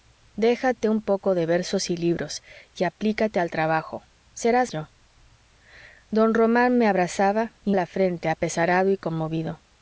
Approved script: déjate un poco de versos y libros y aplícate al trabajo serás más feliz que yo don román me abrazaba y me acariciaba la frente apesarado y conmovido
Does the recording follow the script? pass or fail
fail